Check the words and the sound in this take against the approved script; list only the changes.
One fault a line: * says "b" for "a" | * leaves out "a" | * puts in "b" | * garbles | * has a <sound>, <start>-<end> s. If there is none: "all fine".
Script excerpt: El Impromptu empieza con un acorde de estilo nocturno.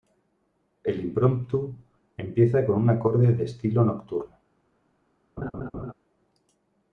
* has a laugh, 5.4-5.9 s